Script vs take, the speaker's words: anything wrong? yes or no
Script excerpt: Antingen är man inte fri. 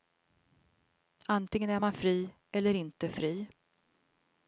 yes